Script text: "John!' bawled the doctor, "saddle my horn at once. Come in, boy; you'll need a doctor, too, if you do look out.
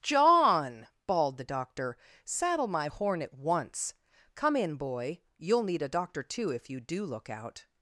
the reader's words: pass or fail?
pass